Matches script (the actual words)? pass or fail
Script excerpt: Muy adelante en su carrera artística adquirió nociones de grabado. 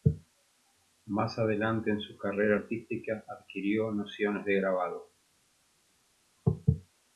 fail